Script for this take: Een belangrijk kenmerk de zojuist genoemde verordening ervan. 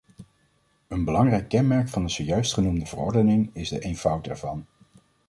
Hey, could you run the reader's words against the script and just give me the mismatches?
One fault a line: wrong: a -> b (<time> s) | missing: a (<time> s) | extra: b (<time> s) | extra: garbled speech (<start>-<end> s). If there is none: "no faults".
extra: van (1.9 s)
extra: is de eenvoud (3.5 s)